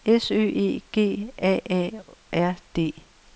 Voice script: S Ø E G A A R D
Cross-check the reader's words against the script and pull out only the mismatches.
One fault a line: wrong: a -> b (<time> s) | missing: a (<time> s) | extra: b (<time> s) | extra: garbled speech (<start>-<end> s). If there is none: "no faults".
no faults